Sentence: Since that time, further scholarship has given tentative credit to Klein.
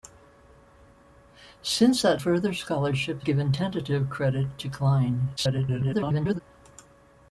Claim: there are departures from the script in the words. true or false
true